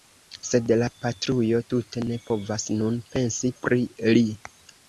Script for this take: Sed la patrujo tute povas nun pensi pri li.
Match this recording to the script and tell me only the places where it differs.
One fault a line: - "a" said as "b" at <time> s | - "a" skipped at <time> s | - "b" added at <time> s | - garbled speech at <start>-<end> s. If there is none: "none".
- "ne" added at 2.1 s